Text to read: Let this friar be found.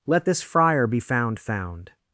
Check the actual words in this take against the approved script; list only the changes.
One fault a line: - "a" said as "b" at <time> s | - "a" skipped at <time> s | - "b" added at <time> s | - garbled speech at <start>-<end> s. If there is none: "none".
- "found" added at 1.4 s